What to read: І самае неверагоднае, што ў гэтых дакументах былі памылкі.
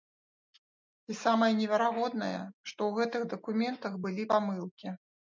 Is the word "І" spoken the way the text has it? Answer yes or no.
yes